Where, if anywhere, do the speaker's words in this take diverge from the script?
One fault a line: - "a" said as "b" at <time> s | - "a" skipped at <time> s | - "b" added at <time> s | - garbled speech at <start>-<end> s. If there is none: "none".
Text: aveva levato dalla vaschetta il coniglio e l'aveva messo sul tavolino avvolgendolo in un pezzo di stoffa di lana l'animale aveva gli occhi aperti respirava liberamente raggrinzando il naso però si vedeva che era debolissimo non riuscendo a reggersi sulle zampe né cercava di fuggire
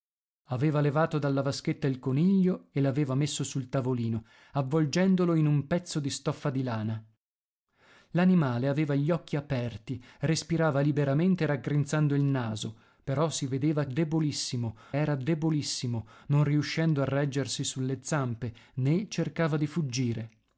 - "che" said as "debolissimo" at 13.8 s